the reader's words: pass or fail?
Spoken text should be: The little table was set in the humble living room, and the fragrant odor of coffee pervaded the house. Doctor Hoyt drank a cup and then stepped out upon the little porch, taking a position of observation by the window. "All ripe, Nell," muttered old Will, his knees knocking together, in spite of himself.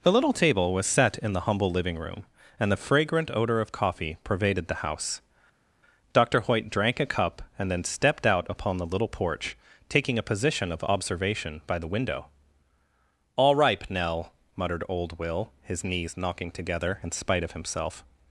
pass